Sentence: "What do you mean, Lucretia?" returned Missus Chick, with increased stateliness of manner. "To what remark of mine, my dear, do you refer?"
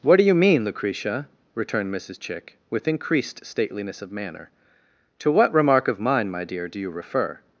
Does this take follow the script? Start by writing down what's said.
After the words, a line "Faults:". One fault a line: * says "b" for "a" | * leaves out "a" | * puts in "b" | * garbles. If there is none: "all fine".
"What do you mean, Lucretia?" returned Missus Chick, with increased stateliness of manner. "To what remark of mine, my dear, do you refer?"
Faults:
all fine